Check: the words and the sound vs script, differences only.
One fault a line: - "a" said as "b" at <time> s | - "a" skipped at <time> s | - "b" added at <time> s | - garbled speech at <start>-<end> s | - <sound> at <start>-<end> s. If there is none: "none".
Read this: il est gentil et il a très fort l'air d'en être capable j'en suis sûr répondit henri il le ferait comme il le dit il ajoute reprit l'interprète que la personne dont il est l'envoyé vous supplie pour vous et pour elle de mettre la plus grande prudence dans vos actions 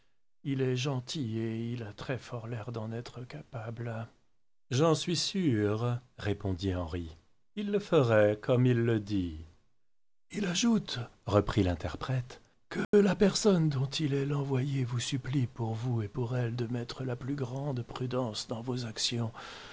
- dropout at 12.8-12.9 s